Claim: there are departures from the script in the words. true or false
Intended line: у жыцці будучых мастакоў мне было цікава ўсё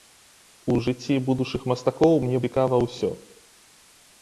true